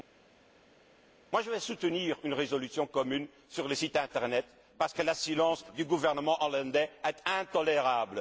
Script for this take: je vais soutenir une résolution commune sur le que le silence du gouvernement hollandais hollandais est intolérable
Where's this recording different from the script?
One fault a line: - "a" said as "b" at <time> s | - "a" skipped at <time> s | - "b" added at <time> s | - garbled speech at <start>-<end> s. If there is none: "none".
- "site internet parce" added at 3.7 s
- "hollandais" skipped at 6.9 s